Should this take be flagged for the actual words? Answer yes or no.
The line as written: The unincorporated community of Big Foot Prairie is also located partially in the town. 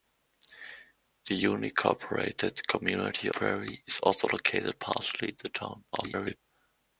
yes